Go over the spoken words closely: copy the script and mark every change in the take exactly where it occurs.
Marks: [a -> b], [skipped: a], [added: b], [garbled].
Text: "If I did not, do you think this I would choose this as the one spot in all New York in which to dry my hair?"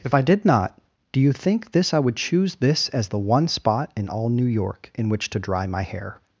"If I did not, do you think this I would choose this as the one spot in all New York in which to dry my hair?"